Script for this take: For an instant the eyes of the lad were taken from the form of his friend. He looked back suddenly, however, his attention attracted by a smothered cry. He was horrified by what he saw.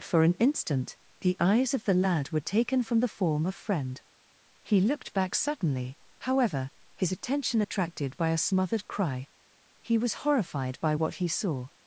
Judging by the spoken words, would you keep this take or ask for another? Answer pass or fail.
fail